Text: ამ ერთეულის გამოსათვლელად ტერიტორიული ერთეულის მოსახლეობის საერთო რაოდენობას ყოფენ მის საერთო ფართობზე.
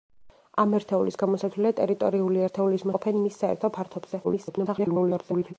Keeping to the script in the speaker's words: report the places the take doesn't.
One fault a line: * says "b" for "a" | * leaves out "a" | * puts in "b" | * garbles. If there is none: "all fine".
* leaves out "მოსახლეობის საერთო რაოდენობას"
* garbles